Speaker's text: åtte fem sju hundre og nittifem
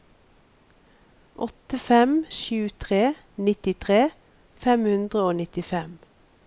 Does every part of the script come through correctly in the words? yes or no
no